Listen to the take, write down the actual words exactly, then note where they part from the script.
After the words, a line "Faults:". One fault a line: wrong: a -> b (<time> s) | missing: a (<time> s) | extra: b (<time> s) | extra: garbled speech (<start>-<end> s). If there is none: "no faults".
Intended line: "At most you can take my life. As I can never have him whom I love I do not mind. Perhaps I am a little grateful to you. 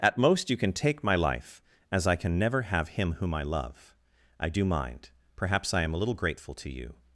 "At most you can take my life. As I can never have him whom I love I do mind. Perhaps I am a little grateful to you.
Faults:
missing: not (4.7 s)